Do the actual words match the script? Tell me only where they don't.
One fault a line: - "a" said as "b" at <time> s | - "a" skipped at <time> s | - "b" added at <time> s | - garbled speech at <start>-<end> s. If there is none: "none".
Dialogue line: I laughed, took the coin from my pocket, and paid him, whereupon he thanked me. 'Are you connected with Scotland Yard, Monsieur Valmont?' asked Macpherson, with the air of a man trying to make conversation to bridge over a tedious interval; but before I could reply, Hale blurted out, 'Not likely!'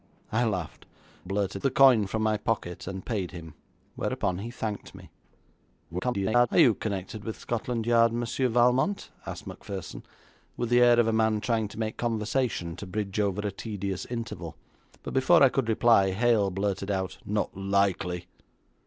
- "took" said as "blurted" at 1.2 s
- garbled speech at 5.9-6.5 s